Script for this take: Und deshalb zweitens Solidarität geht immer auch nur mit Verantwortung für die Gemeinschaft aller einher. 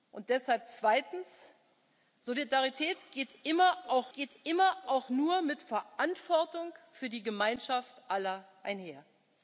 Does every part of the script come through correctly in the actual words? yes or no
no